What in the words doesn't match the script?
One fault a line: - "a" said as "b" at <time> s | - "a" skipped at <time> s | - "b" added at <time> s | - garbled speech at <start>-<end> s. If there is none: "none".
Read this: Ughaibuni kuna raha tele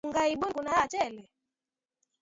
none